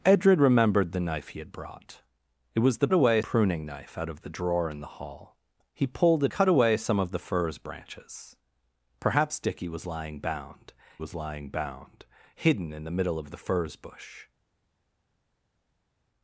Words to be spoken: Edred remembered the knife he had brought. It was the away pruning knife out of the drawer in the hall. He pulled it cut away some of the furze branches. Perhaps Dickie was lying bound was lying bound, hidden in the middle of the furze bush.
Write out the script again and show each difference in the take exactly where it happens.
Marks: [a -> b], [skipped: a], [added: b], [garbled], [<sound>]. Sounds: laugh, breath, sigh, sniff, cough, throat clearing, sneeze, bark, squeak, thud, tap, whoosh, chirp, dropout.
Edred remembered the knife he had brought. It was the away pruning knife out of the drawer in the hall. He pulled it cut away some of the furze branches. Perhaps Dickie was lying bound was lying bound, hidden in the middle of the furze bush.